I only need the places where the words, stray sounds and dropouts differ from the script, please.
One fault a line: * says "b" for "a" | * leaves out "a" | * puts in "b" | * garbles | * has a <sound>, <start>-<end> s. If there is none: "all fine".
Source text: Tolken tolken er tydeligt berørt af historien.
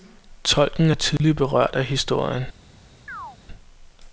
* leaves out "tolken"
* has a dropout, 1.2-1.2 s
* has a chirp, 3.1-3.4 s